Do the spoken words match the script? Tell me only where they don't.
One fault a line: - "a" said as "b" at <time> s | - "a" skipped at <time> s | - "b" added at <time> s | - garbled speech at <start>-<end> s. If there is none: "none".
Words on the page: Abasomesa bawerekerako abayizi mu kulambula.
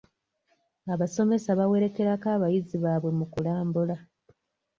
- "baabwe" added at 2.8 s